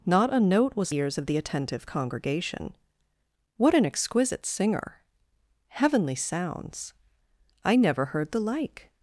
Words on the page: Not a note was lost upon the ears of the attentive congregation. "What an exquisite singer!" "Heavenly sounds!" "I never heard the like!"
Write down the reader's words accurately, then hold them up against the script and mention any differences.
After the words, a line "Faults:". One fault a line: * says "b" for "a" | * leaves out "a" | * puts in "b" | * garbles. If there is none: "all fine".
Not a note was ears of the attentive congregation. "What an exquisite singer!" "Heavenly sounds!" "I never heard the like!"
Faults:
* leaves out "lost upon the"